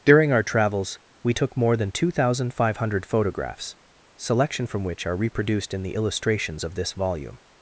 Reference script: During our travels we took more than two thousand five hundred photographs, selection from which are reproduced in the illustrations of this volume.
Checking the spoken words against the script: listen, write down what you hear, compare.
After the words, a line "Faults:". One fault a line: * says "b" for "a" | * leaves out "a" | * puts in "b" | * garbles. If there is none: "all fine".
During our travels we took more than two thousand five hundred photographs, selection from which are reproduced in the illustrations of this volume.
Faults:
all fine